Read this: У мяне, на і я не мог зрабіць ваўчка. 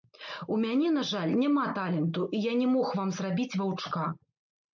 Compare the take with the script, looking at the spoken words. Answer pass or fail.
fail